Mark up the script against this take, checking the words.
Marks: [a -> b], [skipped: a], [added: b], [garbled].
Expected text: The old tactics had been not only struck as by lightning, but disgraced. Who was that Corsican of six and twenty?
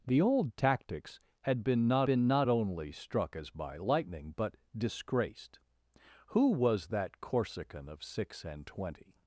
The old tactics had been not [added: been not] only struck as by lightning, but disgraced. Who was that Corsican of six and twenty?